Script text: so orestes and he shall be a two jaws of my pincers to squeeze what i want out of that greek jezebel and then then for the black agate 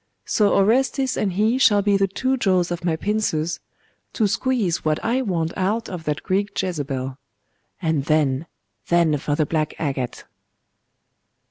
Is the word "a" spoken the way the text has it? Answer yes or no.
no